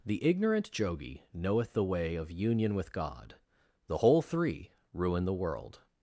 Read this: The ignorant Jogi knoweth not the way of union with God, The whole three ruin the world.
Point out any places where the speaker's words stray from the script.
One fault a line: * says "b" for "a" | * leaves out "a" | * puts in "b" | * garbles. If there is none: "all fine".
* leaves out "not"